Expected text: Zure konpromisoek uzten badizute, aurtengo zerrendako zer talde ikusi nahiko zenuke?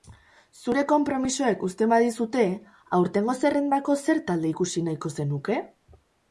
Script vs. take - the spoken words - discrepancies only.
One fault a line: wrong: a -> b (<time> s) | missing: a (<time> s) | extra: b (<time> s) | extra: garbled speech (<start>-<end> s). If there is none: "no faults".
no faults